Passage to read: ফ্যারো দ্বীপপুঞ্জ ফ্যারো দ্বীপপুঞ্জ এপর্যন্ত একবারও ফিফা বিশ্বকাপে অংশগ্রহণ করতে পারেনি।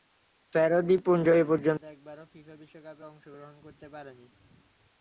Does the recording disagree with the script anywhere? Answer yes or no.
yes